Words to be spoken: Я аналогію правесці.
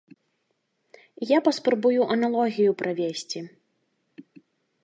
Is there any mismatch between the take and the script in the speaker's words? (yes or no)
yes